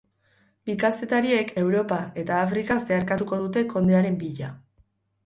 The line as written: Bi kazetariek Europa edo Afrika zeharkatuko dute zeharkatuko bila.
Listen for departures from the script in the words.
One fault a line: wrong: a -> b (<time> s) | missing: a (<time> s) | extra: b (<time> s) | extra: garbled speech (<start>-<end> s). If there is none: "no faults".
wrong: edo -> eta (2.2 s)
wrong: zeharkatuko -> kondearen (3.7 s)